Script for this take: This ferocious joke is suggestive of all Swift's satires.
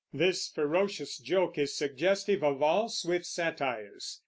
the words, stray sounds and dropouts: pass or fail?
pass